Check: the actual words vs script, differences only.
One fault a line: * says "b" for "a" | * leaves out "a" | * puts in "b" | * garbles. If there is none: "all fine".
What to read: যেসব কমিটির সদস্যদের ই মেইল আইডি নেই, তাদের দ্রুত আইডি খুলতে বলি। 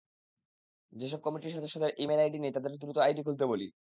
all fine